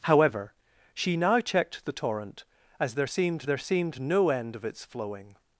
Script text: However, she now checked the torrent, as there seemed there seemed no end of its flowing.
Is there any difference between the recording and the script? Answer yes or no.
no